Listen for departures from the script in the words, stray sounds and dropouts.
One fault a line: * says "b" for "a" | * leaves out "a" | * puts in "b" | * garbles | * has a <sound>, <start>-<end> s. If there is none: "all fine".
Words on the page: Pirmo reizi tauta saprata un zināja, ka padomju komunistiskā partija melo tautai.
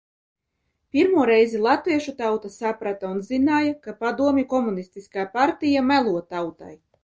* puts in "latviešu"